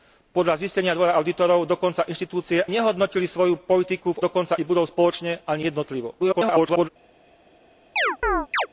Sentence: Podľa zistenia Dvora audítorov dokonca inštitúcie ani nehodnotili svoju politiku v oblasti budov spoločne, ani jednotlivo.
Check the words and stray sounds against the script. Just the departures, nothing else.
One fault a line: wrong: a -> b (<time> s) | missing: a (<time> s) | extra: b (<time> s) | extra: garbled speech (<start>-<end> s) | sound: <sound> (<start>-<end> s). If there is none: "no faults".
missing: ani (2.6 s)
wrong: oblasti -> dokonca (4.2 s)
extra: garbled speech (6.2-6.9 s)
sound: chirp (8.0-8.7 s)